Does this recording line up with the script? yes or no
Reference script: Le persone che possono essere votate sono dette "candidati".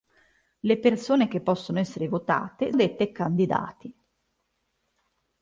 no